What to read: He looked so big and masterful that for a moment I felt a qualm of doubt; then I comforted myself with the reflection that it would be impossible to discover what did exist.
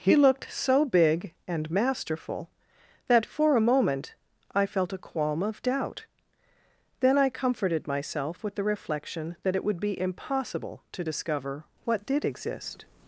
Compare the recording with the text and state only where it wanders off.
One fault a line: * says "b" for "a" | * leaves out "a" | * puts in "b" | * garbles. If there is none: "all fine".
all fine